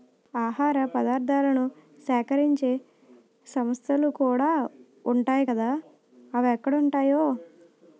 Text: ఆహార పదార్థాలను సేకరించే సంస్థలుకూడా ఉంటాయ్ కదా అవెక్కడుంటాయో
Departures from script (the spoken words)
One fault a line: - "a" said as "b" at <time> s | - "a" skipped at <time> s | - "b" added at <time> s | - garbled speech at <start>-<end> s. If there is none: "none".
none